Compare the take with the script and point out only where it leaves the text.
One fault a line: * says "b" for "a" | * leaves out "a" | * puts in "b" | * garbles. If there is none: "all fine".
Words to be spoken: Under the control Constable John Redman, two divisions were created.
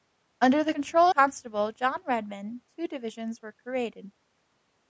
all fine